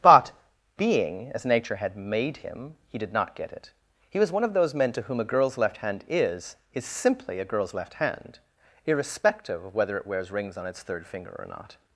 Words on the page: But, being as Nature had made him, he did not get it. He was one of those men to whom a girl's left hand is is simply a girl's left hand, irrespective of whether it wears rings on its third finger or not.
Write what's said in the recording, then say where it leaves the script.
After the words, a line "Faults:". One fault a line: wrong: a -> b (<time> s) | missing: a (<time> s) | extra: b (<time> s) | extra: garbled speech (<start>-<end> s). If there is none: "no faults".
But, being as Nature had made him, he did not get it. He was one of those men to whom a girl's left hand is is simply a girl's left hand, irrespective of whether it wears rings on its third finger or not.
Faults:
no faults